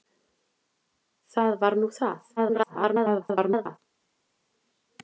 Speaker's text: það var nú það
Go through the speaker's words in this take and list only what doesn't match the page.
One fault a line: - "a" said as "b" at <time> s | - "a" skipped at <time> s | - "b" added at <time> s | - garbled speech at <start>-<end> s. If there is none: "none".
- garbled speech at 2.4-3.8 s